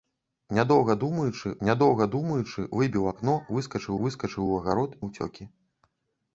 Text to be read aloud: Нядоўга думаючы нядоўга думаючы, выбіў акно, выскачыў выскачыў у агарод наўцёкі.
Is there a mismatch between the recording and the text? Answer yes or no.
no